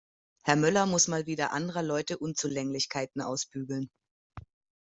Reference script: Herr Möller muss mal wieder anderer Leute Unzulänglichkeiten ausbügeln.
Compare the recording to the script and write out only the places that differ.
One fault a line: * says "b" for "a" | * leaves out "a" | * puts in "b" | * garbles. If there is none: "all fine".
all fine